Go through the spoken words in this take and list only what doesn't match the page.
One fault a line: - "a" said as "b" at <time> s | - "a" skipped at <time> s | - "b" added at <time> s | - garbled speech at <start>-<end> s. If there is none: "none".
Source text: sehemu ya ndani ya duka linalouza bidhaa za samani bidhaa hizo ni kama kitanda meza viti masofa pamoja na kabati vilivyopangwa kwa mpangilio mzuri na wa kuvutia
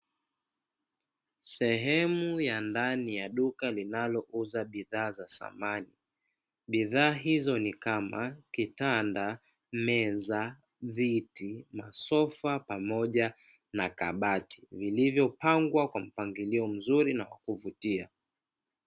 none